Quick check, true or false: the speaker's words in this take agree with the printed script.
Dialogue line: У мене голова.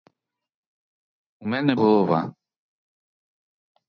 true